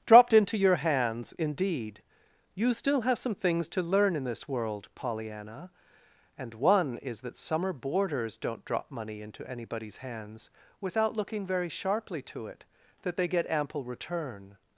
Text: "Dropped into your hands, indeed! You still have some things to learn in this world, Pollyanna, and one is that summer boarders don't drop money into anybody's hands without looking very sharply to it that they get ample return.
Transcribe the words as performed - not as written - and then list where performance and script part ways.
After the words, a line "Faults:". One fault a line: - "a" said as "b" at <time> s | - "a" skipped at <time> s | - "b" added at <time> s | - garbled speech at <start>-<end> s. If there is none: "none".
"Dropped into your hands, indeed! You still have some things to learn in this world, Pollyanna, and one is that summer boarders don't drop money into anybody's hands without looking very sharply to it that they get ample return.
Faults:
none